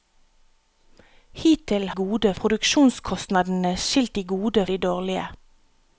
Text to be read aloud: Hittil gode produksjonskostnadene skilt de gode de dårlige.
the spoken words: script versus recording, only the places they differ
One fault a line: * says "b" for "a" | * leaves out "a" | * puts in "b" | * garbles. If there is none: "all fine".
all fine